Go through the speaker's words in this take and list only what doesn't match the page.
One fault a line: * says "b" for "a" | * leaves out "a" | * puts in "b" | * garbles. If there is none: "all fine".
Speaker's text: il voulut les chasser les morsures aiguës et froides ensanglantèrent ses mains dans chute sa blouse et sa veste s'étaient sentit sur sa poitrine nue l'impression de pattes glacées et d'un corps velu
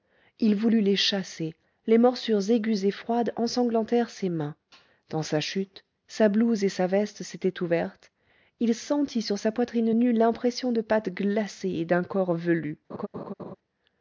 * puts in "sa"
* puts in "ouvertes il"